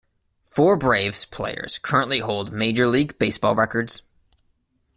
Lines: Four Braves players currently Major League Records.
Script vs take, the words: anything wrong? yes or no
yes